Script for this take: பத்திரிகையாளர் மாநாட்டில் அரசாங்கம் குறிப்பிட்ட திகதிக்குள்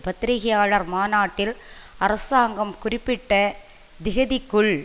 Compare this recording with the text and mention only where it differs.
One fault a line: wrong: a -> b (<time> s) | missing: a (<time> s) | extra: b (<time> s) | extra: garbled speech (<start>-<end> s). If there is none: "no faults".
no faults